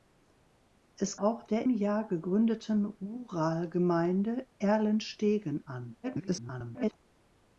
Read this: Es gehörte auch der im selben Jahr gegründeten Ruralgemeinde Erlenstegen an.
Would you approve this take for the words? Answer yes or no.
no